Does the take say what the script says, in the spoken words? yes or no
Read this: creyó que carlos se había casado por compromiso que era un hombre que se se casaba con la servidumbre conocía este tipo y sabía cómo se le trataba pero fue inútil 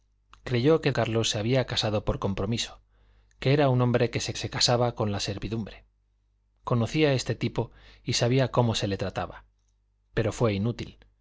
yes